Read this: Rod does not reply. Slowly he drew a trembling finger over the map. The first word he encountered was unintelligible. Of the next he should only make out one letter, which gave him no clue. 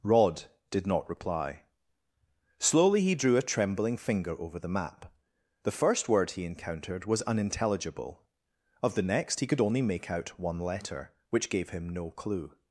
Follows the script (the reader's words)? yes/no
no